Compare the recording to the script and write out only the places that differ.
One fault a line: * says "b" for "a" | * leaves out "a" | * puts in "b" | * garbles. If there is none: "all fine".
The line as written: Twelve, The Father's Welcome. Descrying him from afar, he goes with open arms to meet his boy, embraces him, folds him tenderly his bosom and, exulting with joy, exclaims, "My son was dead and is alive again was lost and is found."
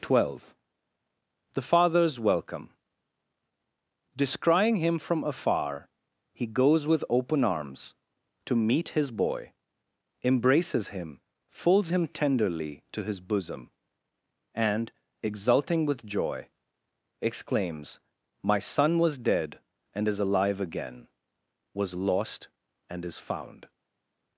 * puts in "to"